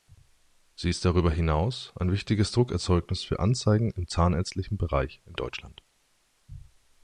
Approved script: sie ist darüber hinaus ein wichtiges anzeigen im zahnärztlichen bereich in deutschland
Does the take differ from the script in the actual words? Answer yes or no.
yes